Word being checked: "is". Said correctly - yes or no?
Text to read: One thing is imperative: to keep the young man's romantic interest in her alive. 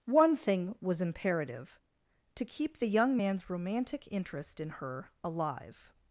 no